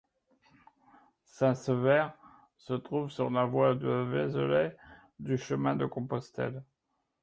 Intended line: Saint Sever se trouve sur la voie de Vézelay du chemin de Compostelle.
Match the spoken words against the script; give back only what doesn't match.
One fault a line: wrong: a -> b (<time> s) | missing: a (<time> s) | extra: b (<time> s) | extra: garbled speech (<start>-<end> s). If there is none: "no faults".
no faults